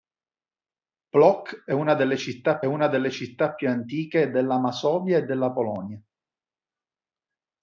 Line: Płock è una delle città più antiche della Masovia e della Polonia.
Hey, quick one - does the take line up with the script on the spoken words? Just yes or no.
no